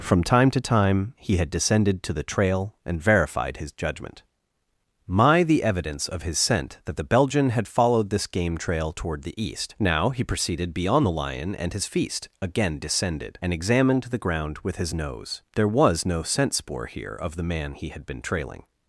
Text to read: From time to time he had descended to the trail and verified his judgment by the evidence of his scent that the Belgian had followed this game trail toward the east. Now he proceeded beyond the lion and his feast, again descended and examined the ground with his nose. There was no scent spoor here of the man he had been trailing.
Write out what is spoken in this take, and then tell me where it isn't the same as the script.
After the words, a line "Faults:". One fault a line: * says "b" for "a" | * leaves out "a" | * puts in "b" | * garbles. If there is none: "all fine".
From time to time he had descended to the trail and verified his judgment my the evidence of his scent that the Belgian had followed this game trail toward the east. Now he proceeded beyond the lion and his feast, again descended and examined the ground with his nose. There was no scent spoor here of the man he had been trailing.
Faults:
* says "my" for "by"